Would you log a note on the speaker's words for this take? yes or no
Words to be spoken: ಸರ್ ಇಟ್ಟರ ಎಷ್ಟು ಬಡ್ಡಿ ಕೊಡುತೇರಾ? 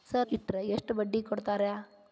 no